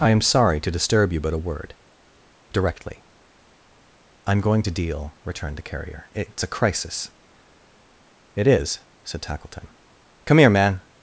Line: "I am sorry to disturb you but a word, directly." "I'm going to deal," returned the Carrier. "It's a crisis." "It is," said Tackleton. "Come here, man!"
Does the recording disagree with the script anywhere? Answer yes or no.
no